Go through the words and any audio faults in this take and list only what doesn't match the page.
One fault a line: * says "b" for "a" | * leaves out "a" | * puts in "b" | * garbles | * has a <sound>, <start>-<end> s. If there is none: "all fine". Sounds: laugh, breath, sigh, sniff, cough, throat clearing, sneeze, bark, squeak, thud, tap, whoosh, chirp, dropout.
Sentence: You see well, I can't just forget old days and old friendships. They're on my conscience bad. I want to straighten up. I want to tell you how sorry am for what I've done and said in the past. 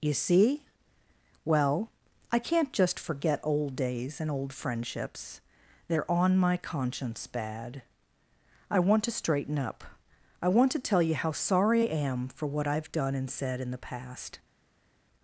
all fine